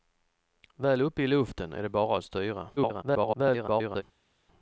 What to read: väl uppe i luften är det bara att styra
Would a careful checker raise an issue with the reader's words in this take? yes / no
yes